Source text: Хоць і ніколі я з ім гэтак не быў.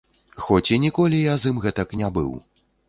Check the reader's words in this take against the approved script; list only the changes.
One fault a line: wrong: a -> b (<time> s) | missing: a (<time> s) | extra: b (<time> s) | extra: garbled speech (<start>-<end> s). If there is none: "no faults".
no faults